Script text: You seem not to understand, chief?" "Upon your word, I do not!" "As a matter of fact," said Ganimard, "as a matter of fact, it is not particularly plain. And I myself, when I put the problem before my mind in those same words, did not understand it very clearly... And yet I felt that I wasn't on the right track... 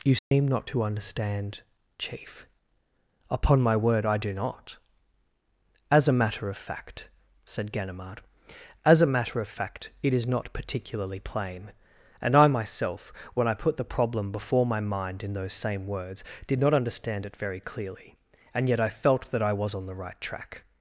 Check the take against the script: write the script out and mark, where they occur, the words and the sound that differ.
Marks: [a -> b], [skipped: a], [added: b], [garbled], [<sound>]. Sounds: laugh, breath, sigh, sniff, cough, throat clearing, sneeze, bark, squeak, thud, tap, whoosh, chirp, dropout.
You seem [dropout] not to understand, chief?" "Upon [your -> my] word, I do not!" "As a matter of fact," said Ganimard, "as a matter of fact, it is not particularly plain. And I myself, when I put the problem before my mind in those same words, did not understand it very clearly... And yet I felt that I [wasn't -> was] on the right track...